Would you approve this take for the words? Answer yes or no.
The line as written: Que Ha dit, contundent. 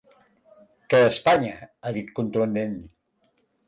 no